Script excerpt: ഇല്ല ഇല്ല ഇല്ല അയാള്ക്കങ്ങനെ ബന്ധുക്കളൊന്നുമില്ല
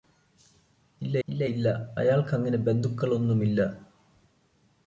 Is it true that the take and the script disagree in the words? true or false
false